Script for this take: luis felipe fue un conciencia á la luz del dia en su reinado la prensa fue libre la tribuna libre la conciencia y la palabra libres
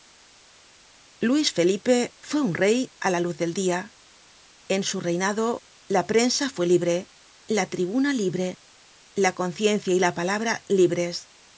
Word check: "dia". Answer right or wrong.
right